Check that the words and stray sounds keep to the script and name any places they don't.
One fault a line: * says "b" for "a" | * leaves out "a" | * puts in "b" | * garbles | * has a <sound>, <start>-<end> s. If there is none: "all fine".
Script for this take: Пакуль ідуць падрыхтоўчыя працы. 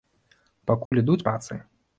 * has a dropout, 0.9-0.9 s
* leaves out "падрыхтоўчыя"